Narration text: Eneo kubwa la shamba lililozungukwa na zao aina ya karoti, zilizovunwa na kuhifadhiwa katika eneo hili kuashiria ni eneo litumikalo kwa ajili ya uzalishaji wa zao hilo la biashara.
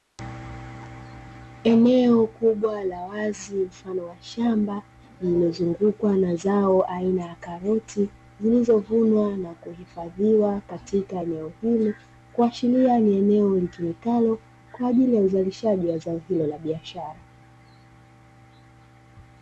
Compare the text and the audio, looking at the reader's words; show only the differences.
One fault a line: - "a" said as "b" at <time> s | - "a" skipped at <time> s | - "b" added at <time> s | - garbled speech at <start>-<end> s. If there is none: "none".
- "wazi mfano wa" added at 3.0 s